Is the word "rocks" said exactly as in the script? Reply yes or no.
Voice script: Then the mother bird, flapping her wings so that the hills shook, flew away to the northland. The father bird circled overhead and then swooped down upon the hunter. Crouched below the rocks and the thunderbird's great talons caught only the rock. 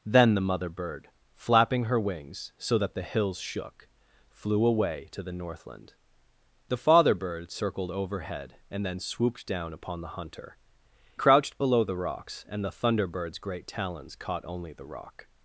yes